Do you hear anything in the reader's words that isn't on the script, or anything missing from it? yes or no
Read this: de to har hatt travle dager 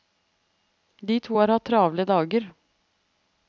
no